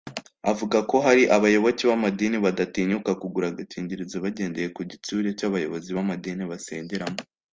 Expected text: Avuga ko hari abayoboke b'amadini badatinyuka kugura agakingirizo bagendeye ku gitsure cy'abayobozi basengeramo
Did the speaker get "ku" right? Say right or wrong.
right